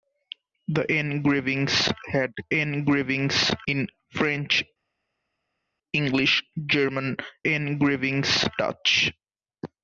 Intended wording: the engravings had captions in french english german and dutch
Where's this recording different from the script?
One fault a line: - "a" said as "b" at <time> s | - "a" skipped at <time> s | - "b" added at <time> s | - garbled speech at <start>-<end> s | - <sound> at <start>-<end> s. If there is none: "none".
- "captions" said as "engravings" at 2.5 s
- "and" said as "engravings" at 7.5 s